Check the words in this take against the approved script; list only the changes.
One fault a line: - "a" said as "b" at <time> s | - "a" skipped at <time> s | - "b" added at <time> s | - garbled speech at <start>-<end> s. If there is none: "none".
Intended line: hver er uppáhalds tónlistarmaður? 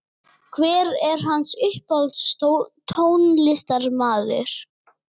- "hans" added at 1.3 s